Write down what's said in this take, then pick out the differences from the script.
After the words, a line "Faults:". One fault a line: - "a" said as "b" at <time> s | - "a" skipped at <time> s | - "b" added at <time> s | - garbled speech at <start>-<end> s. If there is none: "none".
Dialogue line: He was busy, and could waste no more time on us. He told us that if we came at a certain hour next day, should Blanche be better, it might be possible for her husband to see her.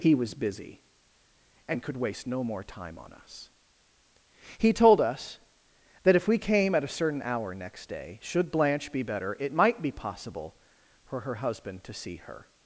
He was busy, and could waste no more time on us. He told us that if we came at a certain hour next day, should Blanche be better, it might be possible for her husband to see her.
Faults:
none